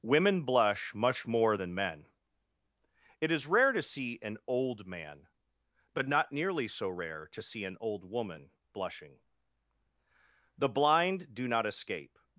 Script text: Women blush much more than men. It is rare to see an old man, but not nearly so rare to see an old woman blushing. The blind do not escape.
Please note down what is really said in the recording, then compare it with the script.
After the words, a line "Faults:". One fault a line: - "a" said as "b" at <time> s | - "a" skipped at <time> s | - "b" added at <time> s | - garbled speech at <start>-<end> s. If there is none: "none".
Women blush much more than men. It is rare to see an old man, but not nearly so rare to see an old woman blushing. The blind do not escape.
Faults:
none